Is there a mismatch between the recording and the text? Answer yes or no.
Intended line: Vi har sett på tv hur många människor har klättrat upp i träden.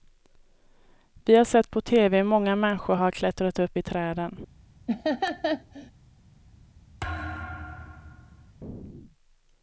no